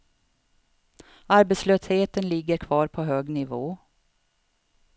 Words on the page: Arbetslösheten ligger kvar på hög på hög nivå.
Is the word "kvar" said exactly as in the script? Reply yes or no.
yes